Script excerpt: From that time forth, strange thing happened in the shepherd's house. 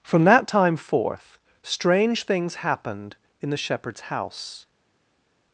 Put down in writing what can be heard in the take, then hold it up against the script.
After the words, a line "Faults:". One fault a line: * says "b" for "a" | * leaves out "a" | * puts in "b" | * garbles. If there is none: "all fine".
From that time forth, strange things happened in the shepherd's house.
Faults:
* says "things" for "thing"